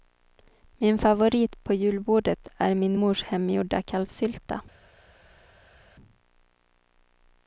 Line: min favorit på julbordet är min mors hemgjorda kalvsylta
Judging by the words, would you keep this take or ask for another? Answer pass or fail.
pass